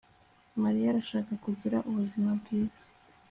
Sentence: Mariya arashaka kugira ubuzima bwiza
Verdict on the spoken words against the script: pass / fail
pass